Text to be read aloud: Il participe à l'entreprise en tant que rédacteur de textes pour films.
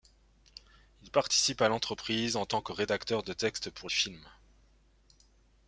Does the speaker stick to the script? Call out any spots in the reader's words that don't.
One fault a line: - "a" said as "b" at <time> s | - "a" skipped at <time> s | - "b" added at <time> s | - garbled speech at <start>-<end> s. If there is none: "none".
none